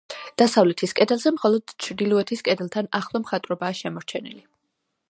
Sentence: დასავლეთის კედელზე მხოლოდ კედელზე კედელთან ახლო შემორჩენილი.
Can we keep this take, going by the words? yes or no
no